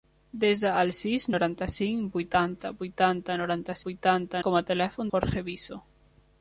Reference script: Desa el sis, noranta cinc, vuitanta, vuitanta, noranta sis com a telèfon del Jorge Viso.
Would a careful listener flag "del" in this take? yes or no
yes